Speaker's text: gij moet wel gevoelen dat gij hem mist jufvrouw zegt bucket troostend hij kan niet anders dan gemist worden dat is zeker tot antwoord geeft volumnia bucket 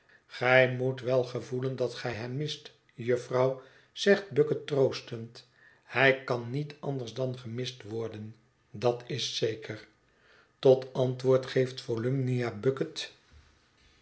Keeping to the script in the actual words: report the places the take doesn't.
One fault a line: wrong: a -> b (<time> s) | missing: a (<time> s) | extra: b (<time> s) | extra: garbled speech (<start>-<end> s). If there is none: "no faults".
no faults